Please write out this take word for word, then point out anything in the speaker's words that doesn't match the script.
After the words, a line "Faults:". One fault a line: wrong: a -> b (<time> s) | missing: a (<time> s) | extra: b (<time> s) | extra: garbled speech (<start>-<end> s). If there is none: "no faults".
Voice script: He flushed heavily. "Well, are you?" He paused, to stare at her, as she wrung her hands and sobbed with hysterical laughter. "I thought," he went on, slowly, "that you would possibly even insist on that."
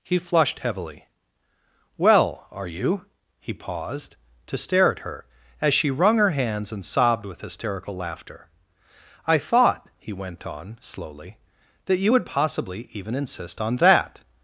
He flushed heavily. "Well, are you?" He paused, to stare at her, as she wrung her hands and sobbed with hysterical laughter. "I thought," he went on, slowly, "that you would possibly even insist on that."
Faults:
no faults